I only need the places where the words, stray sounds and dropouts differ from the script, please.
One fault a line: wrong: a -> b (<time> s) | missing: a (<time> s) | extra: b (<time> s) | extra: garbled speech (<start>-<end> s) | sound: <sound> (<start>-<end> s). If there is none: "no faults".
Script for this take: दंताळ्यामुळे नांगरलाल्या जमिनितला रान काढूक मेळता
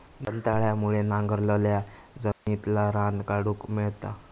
sound: dropout (2.3-2.5 s)